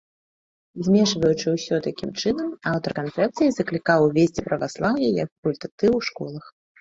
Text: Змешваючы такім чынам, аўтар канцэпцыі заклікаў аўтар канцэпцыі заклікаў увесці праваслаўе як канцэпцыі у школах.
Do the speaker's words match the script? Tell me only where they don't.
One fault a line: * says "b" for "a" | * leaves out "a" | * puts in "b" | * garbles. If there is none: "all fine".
* puts in "ўсё"
* leaves out "аўтар канцэпцыі заклікаў"
* says "факультатыў" for "канцэпцыі"